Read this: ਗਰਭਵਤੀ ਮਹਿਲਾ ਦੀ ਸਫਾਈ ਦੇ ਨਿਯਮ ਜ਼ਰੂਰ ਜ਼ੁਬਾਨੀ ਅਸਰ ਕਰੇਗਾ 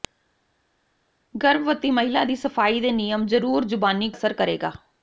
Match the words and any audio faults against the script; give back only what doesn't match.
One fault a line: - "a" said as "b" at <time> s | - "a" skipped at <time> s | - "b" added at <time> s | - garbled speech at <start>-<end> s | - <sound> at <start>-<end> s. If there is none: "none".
none